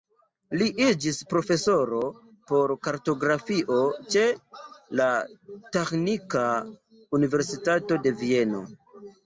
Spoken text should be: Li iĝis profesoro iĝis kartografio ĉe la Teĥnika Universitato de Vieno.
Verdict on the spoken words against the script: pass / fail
fail